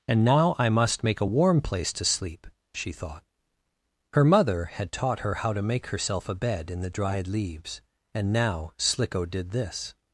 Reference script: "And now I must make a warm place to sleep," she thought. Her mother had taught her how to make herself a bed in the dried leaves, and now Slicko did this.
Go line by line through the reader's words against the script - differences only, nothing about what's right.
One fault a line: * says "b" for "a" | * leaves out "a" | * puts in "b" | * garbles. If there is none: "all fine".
all fine